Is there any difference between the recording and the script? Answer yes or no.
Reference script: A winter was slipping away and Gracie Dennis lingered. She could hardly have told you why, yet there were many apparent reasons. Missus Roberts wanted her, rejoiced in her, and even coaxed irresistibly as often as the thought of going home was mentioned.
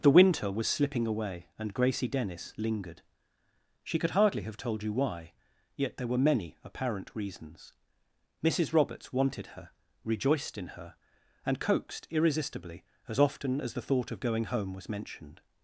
yes